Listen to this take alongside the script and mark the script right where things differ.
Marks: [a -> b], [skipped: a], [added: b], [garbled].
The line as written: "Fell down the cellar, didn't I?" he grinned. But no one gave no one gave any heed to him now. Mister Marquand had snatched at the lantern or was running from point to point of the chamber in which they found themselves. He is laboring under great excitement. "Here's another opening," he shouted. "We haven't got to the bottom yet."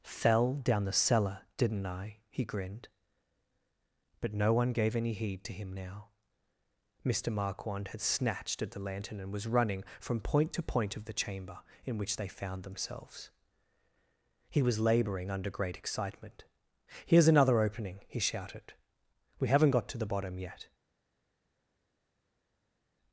"Fell down the cellar, didn't I?" he grinned. But no one gave [skipped: no one gave] any heed to him now. Mister Marquand had snatched at the lantern [or -> and] was running from point to point of the chamber in which they found themselves. He [is -> was] laboring under great excitement. "Here's another opening," he shouted. "We haven't got to the bottom yet."